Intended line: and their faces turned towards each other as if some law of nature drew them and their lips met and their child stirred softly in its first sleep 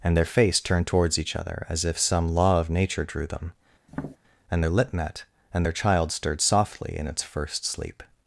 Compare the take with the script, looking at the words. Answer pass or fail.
fail